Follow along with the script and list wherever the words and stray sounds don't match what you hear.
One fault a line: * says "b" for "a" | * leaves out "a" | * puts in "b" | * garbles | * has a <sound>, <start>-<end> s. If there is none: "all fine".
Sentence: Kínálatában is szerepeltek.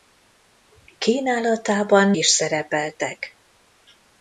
all fine